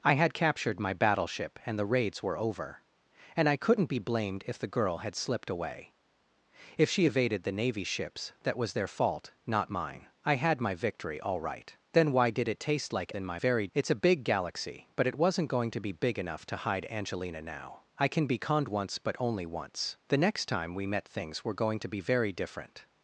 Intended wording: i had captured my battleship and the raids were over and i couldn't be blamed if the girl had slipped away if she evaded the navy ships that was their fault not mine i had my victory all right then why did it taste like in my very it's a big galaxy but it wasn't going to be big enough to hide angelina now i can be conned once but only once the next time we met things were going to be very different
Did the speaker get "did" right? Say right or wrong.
right